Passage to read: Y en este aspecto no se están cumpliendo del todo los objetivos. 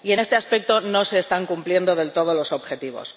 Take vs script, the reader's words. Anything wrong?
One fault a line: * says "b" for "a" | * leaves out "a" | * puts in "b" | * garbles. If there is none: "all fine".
all fine